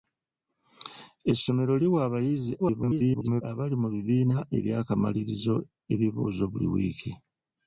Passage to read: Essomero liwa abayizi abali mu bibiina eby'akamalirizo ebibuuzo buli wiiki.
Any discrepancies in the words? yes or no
yes